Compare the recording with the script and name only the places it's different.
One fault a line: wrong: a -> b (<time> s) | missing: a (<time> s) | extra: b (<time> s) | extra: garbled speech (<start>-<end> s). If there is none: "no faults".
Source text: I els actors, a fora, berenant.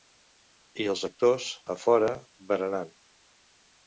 no faults